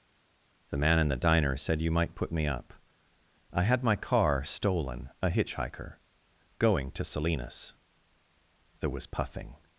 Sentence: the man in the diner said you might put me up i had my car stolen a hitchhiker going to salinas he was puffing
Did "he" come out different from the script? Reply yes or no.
yes